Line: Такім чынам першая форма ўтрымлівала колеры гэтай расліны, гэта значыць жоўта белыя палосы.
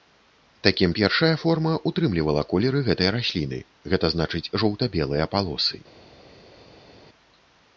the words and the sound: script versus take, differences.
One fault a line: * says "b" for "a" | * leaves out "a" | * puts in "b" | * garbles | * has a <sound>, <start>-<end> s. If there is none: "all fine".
* leaves out "чынам"